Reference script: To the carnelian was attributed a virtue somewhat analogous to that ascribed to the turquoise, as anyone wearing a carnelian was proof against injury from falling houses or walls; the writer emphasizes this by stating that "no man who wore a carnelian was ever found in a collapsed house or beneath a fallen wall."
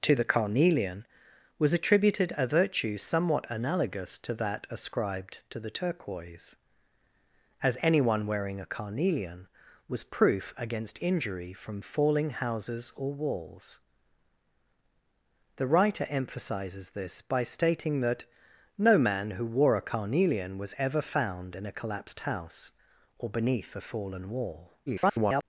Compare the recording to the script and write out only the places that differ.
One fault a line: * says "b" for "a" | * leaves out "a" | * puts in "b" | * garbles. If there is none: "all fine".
* garbles